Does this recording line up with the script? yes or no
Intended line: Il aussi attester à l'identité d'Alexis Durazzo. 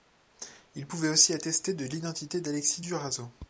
no